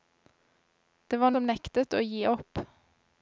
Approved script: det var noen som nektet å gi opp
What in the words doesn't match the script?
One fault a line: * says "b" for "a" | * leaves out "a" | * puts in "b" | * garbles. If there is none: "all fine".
* leaves out "noen"